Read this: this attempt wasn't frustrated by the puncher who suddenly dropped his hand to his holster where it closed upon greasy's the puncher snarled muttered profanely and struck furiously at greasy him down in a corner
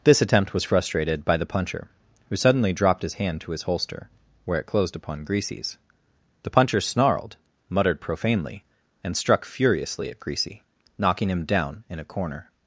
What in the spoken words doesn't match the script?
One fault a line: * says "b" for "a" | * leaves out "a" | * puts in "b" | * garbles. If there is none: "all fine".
* says "was" for "wasn't"
* puts in "knocking"